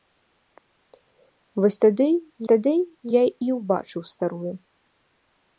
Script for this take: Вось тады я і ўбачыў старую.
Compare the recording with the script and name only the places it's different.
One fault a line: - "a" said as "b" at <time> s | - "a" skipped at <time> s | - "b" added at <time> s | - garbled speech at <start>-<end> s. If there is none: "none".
- "тады" added at 2.5 s